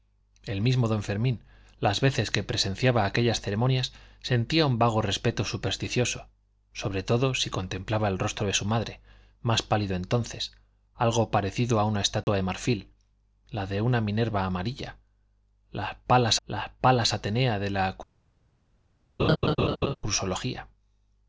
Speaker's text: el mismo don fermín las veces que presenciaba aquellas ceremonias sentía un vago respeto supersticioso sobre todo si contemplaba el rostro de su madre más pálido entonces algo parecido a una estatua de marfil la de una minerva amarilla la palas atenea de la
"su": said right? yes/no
yes